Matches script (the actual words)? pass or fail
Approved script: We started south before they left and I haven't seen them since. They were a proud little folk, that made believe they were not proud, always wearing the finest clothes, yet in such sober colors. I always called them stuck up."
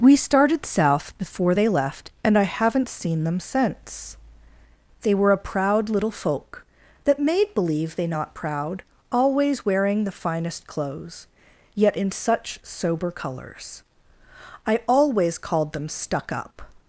fail